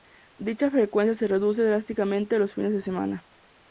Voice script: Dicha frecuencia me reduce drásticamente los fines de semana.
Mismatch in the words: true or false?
true